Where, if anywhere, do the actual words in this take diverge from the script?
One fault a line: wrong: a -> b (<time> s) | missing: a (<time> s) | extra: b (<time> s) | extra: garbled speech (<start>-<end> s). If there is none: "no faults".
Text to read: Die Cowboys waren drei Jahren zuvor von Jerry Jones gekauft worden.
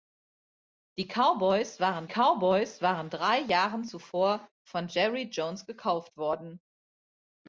extra: Cowboys waren (2.1 s)